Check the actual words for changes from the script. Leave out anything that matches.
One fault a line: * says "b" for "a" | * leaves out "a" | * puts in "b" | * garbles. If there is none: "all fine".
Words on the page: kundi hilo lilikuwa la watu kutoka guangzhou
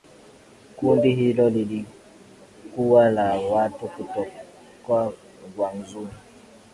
all fine